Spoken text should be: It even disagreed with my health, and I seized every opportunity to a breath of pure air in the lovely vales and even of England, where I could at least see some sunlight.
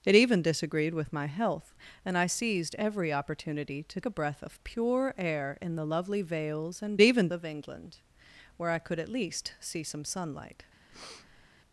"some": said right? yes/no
yes